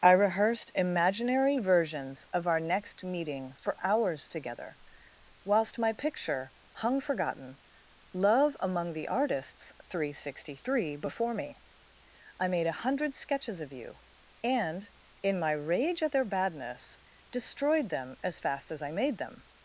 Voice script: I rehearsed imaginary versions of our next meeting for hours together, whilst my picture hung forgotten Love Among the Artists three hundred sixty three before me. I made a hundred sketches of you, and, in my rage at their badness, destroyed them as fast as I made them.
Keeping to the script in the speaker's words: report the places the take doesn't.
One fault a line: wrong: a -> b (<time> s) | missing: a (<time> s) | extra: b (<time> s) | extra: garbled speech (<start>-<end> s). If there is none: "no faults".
no faults